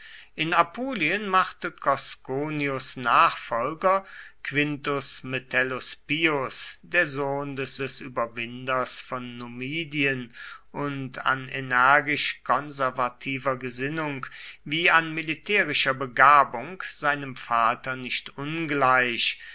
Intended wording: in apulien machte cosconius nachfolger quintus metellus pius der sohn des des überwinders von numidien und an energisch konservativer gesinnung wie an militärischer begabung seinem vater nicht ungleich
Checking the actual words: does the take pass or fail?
pass